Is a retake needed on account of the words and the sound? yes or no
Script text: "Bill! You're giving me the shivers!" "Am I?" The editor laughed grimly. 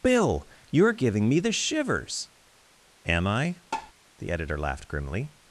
yes